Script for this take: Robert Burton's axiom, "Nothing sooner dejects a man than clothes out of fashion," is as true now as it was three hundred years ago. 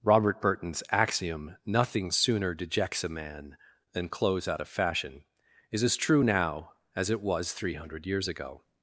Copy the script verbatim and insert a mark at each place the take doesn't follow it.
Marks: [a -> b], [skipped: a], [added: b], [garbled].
Robert Burton's axiom, "Nothing sooner dejects a man than clothes out of fashion," is as true now as it was three hundred years ago.